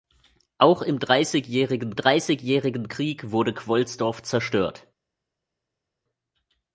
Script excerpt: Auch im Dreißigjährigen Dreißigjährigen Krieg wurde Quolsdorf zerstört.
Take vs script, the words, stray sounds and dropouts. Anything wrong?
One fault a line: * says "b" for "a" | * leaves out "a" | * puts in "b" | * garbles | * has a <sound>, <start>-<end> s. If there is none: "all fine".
all fine